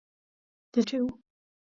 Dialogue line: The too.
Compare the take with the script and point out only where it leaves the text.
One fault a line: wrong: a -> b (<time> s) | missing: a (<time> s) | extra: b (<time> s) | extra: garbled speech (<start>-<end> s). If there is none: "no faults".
no faults